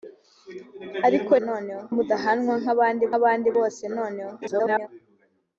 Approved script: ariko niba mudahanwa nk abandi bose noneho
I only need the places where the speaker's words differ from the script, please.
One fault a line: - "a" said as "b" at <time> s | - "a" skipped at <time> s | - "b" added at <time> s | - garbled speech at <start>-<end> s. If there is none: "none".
- "niba" said as "noneho" at 1.5 s
- "abandi" added at 3.2 s
- garbled speech at 4.4-4.9 s